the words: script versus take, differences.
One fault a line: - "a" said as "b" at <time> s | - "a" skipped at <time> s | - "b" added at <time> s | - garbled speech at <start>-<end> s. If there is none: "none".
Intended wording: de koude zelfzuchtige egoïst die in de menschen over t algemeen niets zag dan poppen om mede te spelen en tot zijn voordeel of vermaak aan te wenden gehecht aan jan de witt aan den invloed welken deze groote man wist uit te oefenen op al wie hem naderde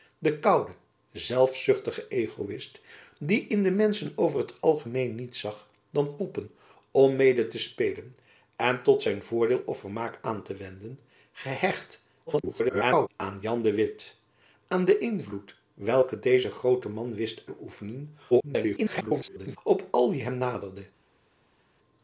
- garbled speech at 12.3-13.1 s
- "uit" skipped at 17.4 s
- garbled speech at 18.3-19.6 s